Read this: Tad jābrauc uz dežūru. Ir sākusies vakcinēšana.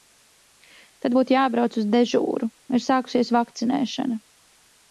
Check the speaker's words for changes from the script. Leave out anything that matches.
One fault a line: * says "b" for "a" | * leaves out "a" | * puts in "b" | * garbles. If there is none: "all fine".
* puts in "būtu"